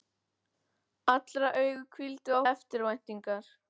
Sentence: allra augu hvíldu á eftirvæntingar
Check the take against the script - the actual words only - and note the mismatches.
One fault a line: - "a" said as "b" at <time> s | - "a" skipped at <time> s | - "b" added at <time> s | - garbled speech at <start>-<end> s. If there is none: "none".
none